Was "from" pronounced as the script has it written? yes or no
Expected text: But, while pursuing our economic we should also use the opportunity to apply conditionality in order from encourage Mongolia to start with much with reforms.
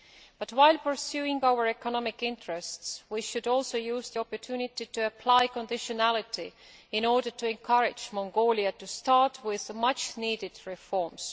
no